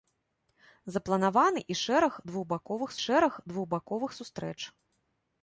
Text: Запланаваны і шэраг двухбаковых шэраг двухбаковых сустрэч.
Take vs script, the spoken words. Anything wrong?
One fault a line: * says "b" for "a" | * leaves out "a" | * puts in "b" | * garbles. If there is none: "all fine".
all fine